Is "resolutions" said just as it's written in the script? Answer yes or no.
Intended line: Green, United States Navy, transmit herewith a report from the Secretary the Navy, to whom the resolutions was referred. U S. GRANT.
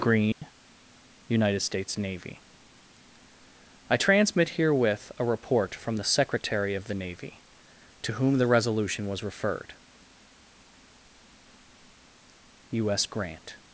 no